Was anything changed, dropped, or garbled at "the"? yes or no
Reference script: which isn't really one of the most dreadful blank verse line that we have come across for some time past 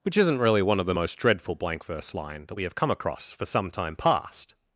no